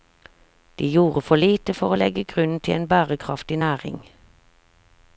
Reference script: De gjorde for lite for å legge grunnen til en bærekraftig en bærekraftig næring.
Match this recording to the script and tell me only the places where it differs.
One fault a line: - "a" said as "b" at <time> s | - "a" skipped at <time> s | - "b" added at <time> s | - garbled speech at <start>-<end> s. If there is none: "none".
- "en bærekraftig" skipped at 3.6 s